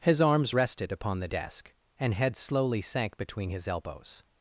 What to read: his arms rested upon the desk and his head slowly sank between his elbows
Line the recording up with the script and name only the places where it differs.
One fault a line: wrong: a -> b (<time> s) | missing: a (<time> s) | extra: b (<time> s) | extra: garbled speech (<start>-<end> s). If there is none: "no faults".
missing: his (2.1 s)